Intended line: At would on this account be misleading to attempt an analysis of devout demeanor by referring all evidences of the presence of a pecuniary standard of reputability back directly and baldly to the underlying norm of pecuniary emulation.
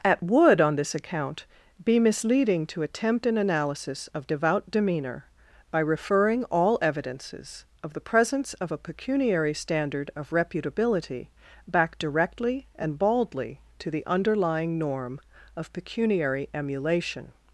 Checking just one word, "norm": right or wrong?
right